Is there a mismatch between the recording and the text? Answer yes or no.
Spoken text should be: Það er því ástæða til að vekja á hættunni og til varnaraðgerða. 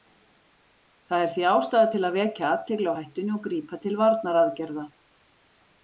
yes